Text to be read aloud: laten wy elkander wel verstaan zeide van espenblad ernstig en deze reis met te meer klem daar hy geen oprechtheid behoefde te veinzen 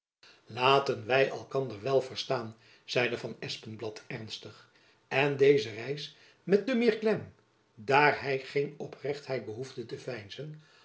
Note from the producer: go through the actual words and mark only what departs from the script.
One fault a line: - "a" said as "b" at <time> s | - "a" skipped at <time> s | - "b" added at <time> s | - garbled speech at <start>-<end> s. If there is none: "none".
none